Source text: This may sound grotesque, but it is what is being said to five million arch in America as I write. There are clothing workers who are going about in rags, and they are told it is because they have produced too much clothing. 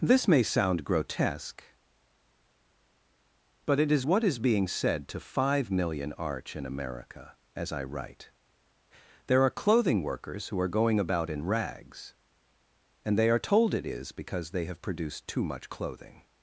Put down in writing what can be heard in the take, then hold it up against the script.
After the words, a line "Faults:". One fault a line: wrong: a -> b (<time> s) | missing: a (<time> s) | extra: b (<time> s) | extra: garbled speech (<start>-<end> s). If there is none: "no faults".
This may sound grotesque, but it is what is being said to five million arch in America as I write. There are clothing workers who are going about in rags, and they are told it is because they have produced too much clothing.
Faults:
no faults